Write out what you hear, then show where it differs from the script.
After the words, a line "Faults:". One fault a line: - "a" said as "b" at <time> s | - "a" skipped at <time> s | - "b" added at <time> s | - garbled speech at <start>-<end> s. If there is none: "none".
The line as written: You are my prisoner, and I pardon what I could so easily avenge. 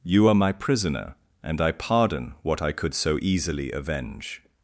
You are my prisoner, and I pardon what I could so easily avenge.
Faults:
none